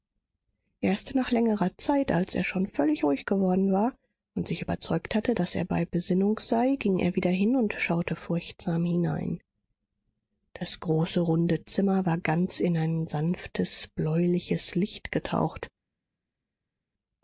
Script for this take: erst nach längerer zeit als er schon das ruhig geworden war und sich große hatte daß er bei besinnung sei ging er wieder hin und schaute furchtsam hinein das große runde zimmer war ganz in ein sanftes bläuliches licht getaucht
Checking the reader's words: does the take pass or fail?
fail